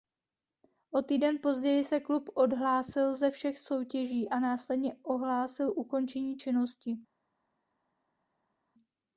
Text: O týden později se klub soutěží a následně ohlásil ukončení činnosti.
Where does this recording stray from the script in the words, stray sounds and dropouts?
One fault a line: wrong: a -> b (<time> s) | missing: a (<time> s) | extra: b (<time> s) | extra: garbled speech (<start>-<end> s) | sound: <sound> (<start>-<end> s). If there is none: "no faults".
extra: odhlásil ze všech (2.3 s)